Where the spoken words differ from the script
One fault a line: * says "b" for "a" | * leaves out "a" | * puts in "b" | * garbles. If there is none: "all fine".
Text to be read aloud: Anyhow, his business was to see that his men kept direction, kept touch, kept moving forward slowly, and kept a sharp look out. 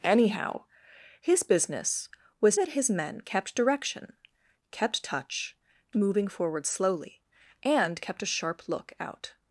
* leaves out "to see"
* leaves out "kept"